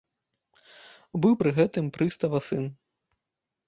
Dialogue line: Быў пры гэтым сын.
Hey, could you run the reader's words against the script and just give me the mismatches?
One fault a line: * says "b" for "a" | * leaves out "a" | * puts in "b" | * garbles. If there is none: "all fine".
* puts in "прыстава"